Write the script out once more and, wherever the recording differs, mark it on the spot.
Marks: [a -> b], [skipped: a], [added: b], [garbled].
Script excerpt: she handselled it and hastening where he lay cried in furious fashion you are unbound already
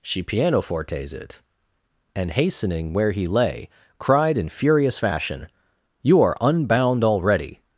she [handselled -> pianofortes] it and hastening where he lay cried in furious fashion you are unbound already